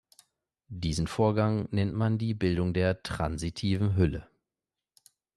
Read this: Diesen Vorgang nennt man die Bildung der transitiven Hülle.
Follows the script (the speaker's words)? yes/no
yes